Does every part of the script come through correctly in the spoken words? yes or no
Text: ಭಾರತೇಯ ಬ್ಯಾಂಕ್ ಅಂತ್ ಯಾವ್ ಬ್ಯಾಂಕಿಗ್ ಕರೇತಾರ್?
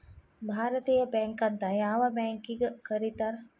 yes